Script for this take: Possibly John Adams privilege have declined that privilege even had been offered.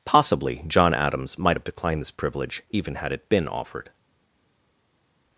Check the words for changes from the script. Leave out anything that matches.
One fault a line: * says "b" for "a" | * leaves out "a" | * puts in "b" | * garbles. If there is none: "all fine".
* says "might" for "privilege"
* says "this" for "that"
* puts in "it"